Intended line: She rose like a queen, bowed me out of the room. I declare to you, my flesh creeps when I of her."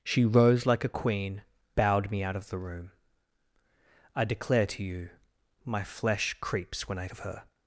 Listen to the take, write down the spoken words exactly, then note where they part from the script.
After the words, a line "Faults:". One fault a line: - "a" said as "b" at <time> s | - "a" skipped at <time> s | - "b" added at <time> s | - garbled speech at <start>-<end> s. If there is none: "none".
She rose like a queen, bowed me out of the room. I declare to you, my flesh creeps when I of her."
Faults:
none